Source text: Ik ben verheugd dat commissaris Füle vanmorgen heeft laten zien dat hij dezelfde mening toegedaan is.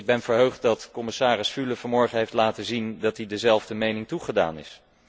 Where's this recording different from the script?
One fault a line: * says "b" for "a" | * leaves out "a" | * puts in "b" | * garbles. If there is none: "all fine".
all fine